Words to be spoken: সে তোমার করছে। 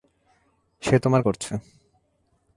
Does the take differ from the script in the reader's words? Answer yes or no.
no